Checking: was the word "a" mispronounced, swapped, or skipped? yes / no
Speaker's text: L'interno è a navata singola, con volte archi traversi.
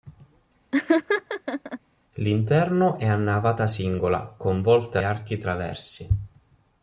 no